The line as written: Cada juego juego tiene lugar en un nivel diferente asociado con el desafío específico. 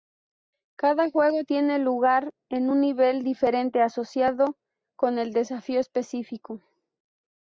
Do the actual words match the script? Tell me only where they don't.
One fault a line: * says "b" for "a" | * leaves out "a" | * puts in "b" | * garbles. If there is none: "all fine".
* leaves out "juego"